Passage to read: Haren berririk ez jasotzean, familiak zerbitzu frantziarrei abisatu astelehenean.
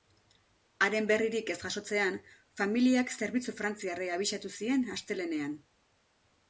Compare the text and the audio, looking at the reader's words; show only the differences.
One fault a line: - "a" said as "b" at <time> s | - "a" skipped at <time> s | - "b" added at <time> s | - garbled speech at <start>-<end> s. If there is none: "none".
- "zien" added at 4.6 s